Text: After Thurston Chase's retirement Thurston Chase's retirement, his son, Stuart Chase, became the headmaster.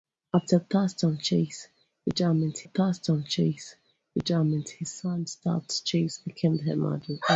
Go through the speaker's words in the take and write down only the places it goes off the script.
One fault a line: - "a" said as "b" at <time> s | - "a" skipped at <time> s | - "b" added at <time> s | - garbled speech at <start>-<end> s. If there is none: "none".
none